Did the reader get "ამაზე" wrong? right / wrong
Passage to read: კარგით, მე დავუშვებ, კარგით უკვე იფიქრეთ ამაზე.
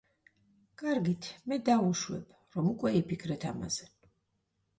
right